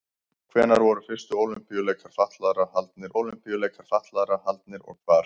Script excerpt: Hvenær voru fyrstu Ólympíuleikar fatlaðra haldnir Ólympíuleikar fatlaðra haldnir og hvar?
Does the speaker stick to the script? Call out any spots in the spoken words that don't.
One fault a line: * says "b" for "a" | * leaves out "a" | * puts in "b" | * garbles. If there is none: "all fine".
all fine